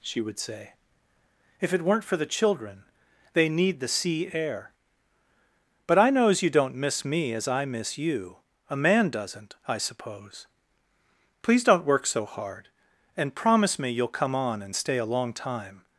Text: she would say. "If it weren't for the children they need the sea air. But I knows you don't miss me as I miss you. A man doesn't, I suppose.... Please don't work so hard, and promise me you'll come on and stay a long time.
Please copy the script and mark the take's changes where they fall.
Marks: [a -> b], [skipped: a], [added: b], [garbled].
she would say. "If it weren't for the children they need the sea air. But I knows you don't miss me as I miss you. A man doesn't, I suppose.... Please don't work so hard, and promise me you'll come on and stay a long time.